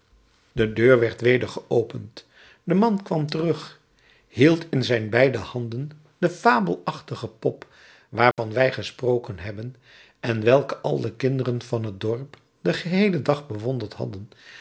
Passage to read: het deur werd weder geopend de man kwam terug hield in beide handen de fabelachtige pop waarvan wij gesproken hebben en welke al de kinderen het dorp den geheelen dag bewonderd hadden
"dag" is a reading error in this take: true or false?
false